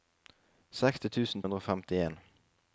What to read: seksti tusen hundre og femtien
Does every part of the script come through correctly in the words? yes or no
yes